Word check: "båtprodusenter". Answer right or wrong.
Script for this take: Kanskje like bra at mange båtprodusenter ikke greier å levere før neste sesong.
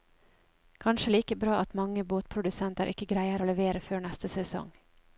right